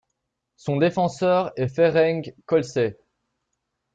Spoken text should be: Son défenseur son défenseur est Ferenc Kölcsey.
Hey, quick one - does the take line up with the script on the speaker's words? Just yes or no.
no